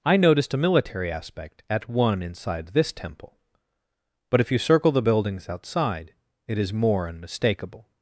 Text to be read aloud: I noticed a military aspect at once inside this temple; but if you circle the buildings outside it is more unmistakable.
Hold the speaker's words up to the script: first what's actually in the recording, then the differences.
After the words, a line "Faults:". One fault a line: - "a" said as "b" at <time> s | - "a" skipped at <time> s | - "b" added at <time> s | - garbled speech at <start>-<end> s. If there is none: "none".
I noticed a military aspect at one inside this temple; but if you circle the buildings outside it is more unmistakable.
Faults:
- "once" said as "one" at 1.9 s